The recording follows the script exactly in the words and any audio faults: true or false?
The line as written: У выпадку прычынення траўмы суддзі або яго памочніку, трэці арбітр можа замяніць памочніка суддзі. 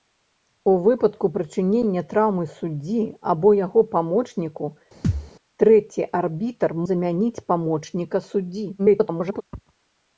false